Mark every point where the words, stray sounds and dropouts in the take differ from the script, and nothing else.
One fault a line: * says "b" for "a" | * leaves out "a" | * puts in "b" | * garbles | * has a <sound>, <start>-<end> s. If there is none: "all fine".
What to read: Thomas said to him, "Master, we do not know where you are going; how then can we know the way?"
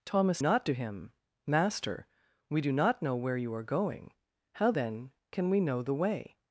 * says "not" for "said"